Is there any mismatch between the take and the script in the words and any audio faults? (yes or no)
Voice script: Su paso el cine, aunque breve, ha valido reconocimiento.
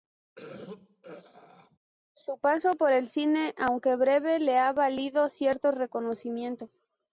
yes